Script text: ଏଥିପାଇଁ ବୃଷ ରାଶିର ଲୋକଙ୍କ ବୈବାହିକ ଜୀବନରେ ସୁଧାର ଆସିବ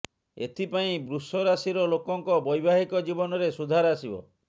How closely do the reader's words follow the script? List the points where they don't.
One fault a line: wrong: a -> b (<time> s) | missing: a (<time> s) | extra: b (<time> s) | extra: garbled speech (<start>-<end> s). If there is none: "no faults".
no faults